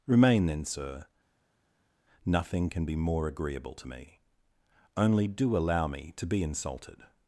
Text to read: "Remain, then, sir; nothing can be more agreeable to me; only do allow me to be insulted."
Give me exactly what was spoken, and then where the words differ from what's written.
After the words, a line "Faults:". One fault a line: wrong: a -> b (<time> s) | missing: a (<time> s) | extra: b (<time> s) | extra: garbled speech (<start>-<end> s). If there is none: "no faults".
"Remain, then, sir; nothing can be more agreeable to me; only do allow me to be insulted."
Faults:
no faults